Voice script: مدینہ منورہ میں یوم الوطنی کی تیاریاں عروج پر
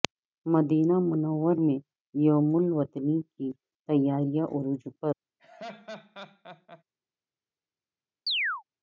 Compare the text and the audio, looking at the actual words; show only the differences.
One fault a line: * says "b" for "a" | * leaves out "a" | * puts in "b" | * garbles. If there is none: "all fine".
all fine